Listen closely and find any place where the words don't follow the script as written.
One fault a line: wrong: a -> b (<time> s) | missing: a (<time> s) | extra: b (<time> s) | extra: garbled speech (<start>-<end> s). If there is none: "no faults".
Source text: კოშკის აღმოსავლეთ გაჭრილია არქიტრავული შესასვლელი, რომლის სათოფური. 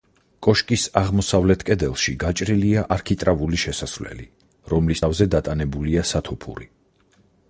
extra: კედელში (1.7 s)
extra: თავზე დატანებულია (5.0 s)